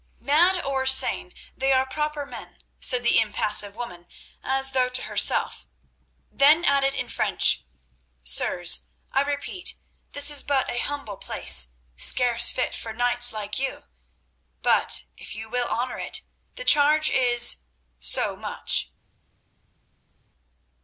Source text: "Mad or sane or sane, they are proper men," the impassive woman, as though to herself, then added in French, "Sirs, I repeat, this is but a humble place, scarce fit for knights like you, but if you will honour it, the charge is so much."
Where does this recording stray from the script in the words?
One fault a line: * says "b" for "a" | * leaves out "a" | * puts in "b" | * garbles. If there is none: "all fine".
* leaves out "or sane"
* puts in "said"